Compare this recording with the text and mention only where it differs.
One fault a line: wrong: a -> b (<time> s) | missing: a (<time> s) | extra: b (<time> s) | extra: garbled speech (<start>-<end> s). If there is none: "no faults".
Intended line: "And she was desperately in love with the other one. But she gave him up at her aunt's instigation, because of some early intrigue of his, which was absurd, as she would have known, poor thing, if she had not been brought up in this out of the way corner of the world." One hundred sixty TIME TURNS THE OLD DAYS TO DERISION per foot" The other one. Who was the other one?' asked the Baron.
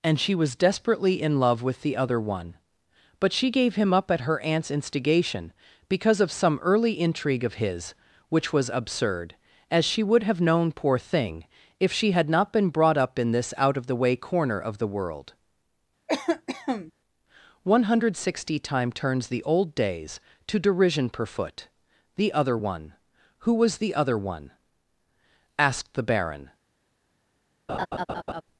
no faults